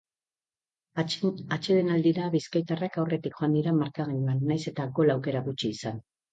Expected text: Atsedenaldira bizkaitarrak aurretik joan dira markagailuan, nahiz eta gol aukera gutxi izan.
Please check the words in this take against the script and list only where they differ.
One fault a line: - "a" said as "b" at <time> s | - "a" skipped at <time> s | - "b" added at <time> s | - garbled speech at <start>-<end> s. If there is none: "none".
none